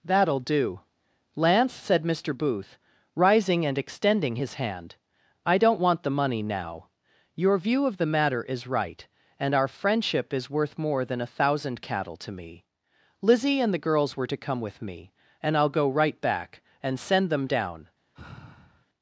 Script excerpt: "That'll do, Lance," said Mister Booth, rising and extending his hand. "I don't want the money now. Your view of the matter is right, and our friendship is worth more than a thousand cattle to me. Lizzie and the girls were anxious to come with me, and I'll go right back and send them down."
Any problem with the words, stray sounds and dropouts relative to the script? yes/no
yes